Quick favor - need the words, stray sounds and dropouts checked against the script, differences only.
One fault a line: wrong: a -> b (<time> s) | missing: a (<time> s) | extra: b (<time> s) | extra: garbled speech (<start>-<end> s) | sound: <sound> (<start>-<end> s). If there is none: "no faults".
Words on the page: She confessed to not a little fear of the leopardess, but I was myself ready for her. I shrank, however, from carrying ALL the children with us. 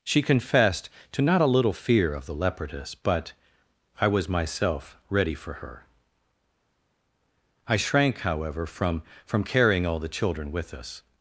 extra: from (9.2 s)